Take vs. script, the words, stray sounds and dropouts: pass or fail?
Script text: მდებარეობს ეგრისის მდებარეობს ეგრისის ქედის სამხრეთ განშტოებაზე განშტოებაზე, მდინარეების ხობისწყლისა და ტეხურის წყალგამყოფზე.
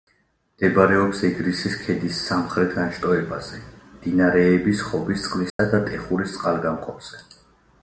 fail